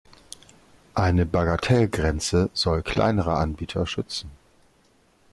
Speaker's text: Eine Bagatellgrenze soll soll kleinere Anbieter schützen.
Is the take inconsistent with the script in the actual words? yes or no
yes